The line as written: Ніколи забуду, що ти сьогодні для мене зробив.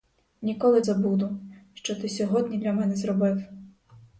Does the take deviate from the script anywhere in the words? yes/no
no